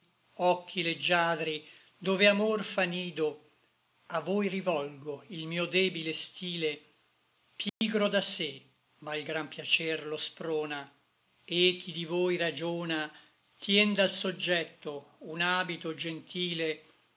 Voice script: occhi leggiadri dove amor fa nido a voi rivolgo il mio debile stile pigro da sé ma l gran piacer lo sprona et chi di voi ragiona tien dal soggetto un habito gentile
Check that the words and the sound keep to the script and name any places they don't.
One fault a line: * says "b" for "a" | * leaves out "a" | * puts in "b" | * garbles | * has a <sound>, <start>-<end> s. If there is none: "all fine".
* has a dropout, 7.7-7.8 s